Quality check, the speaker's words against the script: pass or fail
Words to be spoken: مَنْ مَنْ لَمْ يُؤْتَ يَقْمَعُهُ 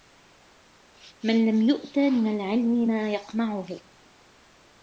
fail